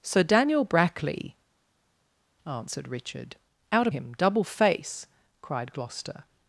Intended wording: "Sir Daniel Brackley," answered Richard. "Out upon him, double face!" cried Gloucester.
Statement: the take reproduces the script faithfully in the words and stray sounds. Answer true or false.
false